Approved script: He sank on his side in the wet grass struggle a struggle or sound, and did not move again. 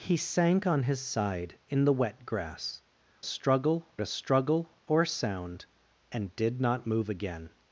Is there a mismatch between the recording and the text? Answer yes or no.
no